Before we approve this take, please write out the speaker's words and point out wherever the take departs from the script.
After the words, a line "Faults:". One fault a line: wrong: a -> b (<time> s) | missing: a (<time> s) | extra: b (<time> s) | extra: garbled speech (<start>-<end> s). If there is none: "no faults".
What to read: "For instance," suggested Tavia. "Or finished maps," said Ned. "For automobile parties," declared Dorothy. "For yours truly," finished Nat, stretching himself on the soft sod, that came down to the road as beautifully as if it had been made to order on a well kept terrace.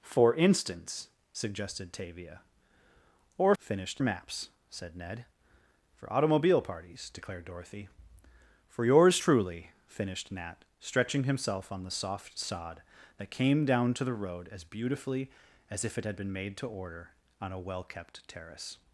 "For instance," suggested Tavia. "Or finished maps," said Ned. "For automobile parties," declared Dorothy. "For yours truly," finished Nat, stretching himself on the soft sod, that came down to the road as beautifully as if it had been made to order on a well kept terrace.
Faults:
no faults